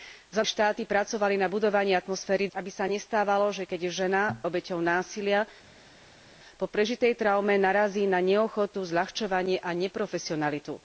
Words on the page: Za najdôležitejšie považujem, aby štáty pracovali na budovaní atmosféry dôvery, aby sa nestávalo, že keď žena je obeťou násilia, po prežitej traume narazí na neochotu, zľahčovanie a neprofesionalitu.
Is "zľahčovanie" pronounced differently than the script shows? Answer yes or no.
no